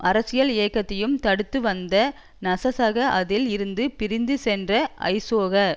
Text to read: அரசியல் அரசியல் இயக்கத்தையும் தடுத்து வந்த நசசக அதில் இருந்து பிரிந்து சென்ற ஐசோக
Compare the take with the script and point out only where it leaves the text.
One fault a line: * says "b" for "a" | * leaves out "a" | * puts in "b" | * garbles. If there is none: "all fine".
* leaves out "அரசியல்"